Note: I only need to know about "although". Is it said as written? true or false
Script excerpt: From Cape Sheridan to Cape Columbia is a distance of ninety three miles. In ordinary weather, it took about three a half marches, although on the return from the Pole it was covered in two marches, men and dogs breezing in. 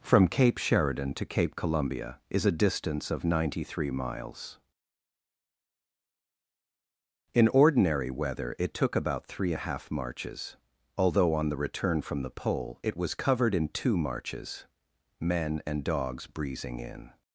true